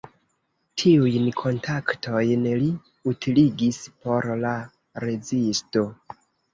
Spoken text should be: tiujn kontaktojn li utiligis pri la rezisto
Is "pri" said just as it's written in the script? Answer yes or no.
no